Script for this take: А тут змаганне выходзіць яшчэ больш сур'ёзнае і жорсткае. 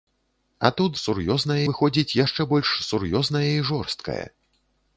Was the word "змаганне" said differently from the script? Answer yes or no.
yes